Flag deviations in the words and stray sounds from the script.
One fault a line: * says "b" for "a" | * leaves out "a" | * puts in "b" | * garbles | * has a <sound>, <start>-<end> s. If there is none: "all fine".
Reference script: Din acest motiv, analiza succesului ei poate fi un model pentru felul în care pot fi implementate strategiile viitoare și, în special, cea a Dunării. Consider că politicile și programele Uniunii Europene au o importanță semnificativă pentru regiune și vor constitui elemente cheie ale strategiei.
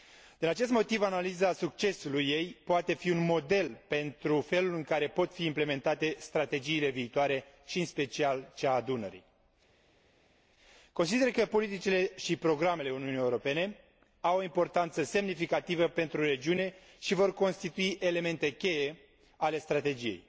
all fine